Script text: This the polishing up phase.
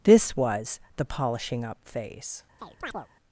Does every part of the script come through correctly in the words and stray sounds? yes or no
no